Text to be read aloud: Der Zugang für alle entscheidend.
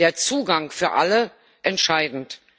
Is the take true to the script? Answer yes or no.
yes